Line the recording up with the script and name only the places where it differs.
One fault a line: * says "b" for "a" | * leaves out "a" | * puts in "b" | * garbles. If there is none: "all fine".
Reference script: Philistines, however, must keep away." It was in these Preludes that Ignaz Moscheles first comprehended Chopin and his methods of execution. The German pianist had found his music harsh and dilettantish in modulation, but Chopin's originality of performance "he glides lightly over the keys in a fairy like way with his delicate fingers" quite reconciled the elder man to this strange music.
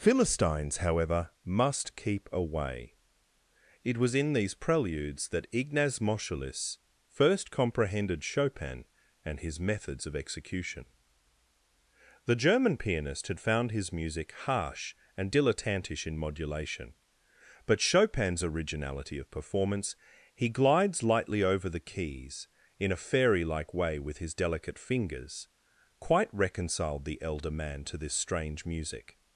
all fine